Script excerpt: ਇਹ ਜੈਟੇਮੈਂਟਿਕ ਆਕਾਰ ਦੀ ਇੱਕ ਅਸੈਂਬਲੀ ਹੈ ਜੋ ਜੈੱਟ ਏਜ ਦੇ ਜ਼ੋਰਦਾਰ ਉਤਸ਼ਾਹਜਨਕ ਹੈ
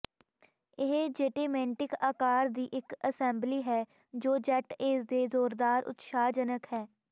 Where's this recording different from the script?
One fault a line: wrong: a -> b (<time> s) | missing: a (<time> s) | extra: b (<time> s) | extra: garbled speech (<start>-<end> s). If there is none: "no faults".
no faults